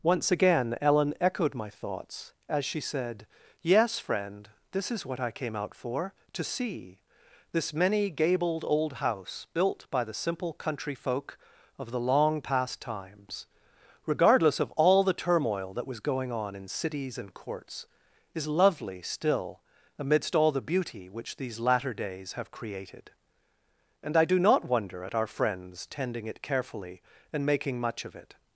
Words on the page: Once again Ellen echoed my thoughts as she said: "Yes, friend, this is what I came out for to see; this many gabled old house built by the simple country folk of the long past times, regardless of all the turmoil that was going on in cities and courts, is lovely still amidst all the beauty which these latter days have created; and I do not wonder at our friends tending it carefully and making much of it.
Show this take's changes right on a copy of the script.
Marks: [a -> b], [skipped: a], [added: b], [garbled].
Once again Ellen echoed my thoughts as she said: "Yes, friend, this is what I came out for to see; this many gabled old house built by the simple country folk of the long past times, regardless of all the turmoil that was going on in cities and courts, is lovely still amidst all the beauty which these latter days have created; and I do not wonder at our friends tending it carefully and making much of it.